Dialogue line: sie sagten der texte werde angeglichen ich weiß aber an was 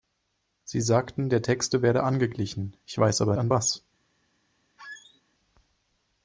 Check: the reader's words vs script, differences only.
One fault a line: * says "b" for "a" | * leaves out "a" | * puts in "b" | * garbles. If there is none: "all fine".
all fine